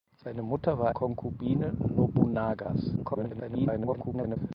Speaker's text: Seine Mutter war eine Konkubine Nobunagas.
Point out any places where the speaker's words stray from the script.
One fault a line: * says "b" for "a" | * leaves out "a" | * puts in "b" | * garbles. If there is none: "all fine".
* leaves out "eine"
* garbles